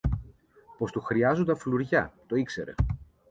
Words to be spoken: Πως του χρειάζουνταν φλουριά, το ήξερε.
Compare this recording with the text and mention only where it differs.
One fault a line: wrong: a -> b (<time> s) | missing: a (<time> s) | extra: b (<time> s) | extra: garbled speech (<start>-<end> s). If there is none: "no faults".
no faults